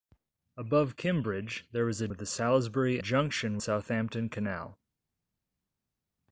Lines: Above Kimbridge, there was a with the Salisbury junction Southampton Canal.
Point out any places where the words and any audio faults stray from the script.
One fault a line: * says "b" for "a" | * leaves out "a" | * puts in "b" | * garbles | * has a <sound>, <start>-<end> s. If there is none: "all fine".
all fine